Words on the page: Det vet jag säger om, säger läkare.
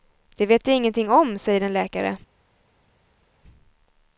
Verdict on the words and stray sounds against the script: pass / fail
fail